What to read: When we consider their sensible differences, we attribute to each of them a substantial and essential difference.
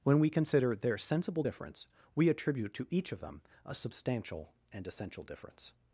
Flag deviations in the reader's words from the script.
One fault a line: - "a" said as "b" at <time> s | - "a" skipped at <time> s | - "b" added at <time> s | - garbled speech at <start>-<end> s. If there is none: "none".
- "differences" said as "difference" at 1.4 s